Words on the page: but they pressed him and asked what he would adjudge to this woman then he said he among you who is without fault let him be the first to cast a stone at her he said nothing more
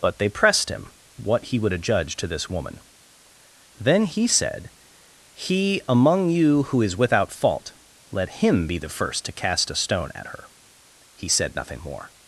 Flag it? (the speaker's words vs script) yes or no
yes